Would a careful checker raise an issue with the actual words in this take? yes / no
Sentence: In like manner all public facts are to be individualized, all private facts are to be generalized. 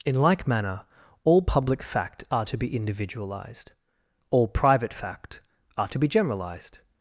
yes